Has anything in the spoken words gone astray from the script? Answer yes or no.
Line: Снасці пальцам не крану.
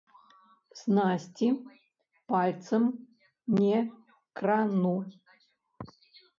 no